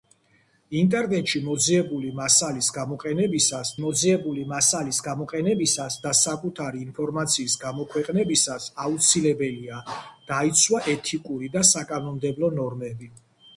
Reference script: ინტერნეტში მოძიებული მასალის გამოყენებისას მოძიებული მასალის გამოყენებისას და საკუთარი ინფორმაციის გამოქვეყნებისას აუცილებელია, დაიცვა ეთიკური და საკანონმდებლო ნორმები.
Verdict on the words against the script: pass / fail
pass